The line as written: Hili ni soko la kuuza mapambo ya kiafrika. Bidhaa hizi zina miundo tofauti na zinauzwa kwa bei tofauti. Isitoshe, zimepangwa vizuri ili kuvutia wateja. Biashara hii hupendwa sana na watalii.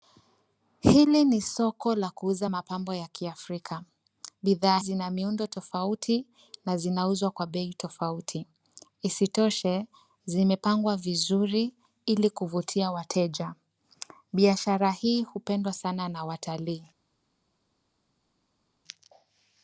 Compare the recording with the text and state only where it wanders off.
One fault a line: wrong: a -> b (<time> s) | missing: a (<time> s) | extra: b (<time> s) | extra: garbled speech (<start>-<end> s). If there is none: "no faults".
missing: hizi (4.8 s)